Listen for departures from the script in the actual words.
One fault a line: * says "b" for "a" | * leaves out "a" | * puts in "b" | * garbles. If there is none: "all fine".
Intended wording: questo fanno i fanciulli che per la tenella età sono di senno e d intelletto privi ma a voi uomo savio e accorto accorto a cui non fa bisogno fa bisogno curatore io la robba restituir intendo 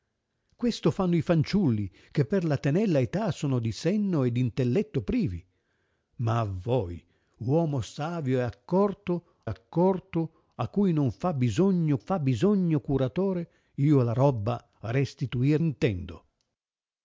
all fine